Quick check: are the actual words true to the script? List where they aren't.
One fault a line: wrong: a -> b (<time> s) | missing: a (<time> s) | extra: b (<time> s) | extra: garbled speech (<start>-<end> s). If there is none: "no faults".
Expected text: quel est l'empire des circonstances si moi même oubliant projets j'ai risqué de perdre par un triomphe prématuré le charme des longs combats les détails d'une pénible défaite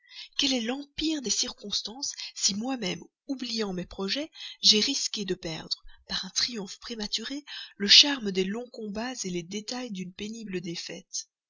extra: mes (3.7 s)